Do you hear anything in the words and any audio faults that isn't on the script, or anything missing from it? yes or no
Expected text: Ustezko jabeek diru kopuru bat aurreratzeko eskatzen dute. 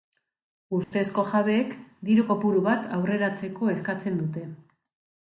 yes